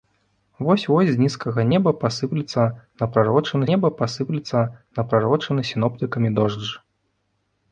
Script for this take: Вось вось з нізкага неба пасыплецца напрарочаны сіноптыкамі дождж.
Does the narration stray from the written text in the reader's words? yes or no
yes